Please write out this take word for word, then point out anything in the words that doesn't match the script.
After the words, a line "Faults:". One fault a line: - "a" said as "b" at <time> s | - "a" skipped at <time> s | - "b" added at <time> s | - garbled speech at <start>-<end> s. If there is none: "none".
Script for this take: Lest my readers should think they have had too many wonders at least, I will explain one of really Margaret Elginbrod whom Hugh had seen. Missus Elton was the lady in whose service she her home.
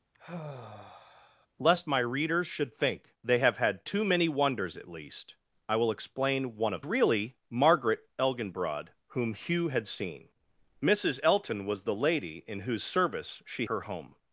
Lest my readers should think they have had too many wonders at least, I will explain one of really Margaret Elginbrod whom Hugh had seen. Missus Elton was the lady in whose service she her home.
Faults:
none